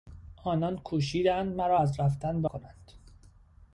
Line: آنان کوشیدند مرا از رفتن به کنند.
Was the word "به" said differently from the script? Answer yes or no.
no